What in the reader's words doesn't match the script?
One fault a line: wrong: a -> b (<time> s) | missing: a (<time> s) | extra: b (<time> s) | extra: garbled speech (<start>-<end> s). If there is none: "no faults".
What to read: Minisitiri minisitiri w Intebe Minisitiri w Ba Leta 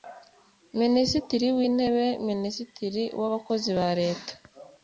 missing: minisitiri (1.5 s)
extra: Abakozi (3.3 s)